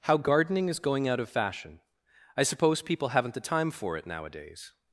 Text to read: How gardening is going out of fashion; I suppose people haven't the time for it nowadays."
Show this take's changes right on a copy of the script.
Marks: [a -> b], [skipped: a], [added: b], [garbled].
How gardening is going out of fashion; I suppose people haven't the time for it nowadays."